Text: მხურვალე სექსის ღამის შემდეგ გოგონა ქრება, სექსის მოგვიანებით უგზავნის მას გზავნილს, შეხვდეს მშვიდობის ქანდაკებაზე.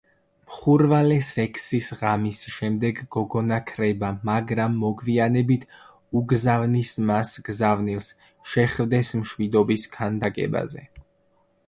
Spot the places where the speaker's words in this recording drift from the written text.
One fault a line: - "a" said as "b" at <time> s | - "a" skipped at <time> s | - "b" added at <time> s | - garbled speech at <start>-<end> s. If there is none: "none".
- "სექსის" said as "მაგრამ" at 4.3 s